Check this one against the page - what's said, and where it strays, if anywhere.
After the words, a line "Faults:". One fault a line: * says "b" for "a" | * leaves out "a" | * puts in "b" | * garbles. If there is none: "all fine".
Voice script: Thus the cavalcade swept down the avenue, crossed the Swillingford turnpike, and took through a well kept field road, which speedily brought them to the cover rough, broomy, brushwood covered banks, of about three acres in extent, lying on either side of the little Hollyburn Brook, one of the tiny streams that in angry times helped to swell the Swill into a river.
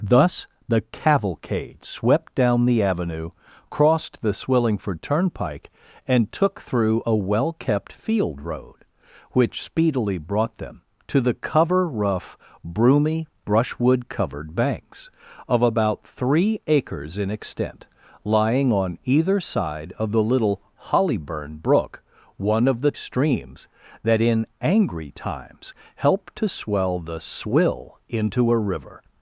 Thus the cavalcade swept down the avenue, crossed the Swillingford turnpike, and took through a well kept field road, which speedily brought them to the cover rough, broomy, brushwood covered banks, of about three acres in extent, lying on either side of the little Hollyburn Brook, one of the streams that in angry times helped to swell the Swill into a river.
Faults:
* leaves out "tiny"